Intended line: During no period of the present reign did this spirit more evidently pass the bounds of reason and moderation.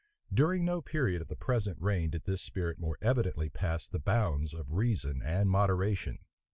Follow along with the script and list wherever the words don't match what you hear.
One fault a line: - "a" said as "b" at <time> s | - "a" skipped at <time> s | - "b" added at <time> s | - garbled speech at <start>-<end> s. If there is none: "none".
none